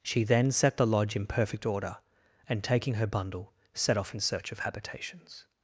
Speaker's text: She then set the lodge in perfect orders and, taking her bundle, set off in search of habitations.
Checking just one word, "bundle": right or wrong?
right